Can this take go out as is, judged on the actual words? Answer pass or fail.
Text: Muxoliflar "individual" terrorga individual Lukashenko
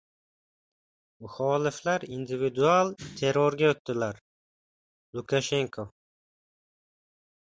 fail